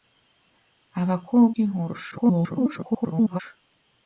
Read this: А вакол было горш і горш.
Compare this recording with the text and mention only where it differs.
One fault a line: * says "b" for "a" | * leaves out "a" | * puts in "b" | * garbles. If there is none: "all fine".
* leaves out "было горш"
* garbles